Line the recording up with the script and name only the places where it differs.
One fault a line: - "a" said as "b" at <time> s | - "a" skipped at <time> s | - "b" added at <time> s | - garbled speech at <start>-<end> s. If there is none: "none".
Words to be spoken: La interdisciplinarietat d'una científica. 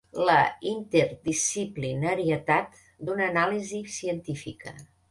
- "anàlisi" added at 3.3 s